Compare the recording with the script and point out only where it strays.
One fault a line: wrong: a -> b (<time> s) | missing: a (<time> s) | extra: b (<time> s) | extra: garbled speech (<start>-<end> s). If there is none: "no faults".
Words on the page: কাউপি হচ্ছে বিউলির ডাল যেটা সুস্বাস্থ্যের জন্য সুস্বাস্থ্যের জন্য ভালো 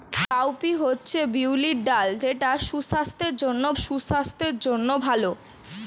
no faults